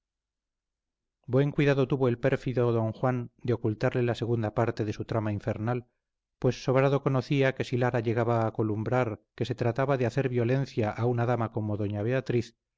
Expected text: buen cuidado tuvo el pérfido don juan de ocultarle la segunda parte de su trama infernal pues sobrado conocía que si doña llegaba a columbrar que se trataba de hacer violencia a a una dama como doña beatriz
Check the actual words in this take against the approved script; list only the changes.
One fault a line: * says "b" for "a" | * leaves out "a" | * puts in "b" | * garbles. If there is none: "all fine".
* says "lara" for "doña"
* leaves out "a"